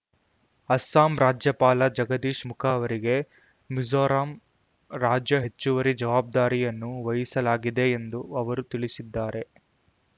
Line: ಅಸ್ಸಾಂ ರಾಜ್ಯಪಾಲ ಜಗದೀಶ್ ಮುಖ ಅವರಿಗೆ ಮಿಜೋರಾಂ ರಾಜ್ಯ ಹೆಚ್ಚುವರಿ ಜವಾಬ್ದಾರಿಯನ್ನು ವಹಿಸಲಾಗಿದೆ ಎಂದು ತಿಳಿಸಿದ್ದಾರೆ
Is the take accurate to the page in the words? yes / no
no